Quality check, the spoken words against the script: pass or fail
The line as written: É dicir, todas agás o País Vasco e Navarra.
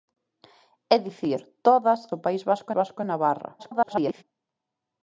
fail